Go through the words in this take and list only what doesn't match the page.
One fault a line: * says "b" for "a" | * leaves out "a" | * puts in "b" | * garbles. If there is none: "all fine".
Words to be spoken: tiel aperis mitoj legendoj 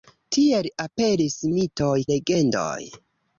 all fine